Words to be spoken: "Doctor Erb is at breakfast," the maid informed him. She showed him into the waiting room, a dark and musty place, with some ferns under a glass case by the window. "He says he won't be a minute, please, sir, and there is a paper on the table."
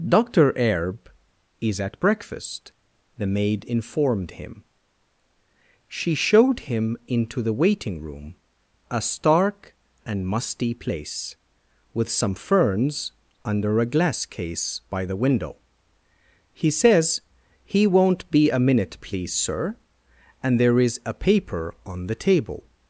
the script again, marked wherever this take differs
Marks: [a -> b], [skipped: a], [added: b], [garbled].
"Doctor Erb is at breakfast," the maid informed him. She showed him into the waiting room, a [dark -> stark] and musty place, with some ferns under a glass case by the window. "He says he won't be a minute, please, sir, and there is a paper on the table."